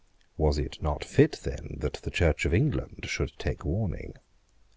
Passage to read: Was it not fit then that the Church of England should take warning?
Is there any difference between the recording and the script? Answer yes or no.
no